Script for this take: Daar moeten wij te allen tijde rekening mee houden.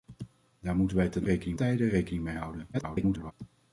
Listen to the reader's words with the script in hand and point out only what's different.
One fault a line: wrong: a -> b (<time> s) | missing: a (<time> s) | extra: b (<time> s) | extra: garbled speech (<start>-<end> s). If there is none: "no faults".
wrong: allen -> rekening (1.2 s)
extra: garbled speech (2.7-3.3 s)